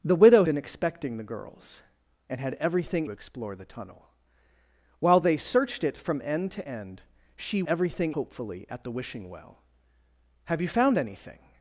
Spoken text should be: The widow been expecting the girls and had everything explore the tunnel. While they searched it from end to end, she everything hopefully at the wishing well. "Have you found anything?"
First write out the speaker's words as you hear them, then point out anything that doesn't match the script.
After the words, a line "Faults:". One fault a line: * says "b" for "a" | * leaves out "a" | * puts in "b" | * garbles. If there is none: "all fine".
The widow been expecting the girls and had everything explore the tunnel. While they searched it from end to end, she everything hopefully at the wishing well. "Have you found anything?"
Faults:
all fine